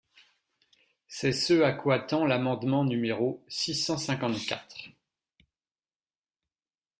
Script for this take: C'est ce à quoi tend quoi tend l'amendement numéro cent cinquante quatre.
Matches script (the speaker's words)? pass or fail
fail